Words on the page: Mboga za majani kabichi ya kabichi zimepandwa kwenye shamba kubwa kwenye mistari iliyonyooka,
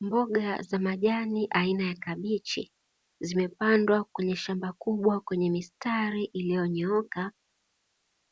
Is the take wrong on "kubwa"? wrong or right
right